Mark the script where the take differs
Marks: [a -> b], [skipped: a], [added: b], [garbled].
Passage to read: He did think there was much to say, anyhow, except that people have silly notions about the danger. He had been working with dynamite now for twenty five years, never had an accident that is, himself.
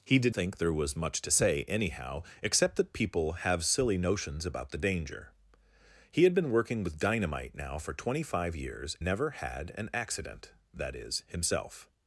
He did think there was much to say, anyhow, except that people have silly notions about the danger. He had been working with dynamite now for twenty five years, never had an accident that is, himself.